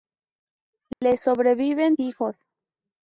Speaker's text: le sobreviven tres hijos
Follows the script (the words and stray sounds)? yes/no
no